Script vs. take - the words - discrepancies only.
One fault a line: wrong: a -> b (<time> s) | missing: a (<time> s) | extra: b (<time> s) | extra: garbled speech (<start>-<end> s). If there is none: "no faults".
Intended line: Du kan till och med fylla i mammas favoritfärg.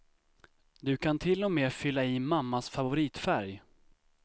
no faults